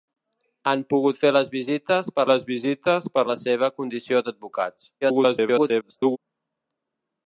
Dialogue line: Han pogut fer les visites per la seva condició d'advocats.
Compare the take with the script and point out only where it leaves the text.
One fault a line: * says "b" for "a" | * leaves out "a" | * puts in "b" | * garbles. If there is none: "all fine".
* puts in "les visites per"
* garbles